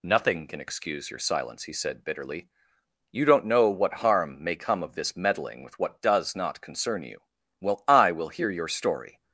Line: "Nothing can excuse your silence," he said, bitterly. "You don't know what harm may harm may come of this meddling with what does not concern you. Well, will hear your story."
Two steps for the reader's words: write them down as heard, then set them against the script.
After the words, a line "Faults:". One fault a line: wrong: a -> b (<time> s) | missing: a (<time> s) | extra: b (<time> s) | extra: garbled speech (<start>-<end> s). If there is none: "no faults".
"Nothing can excuse your silence," he said, bitterly. "You don't know what harm may come of this meddling with what does not concern you. Well, I will hear your story."
Faults:
missing: harm may (4.5 s)
extra: I (7.9 s)